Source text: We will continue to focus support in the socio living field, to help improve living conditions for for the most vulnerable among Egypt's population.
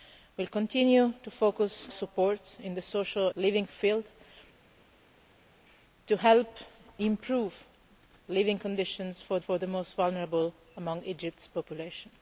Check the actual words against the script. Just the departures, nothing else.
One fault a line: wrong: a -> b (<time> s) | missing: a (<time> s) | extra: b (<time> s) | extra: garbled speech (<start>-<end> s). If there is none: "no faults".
no faults